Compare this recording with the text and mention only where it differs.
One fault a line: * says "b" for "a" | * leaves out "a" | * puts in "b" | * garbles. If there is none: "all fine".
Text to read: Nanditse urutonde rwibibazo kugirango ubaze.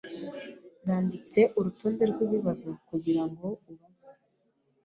all fine